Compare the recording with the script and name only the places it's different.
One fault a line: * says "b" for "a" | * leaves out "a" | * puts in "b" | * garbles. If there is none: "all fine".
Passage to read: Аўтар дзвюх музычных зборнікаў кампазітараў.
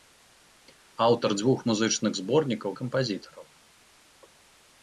all fine